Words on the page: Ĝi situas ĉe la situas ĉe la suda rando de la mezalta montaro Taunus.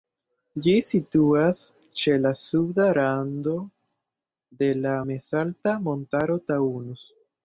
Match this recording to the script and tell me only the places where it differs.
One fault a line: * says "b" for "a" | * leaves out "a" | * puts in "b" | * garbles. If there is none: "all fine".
* leaves out "situas ĉe la"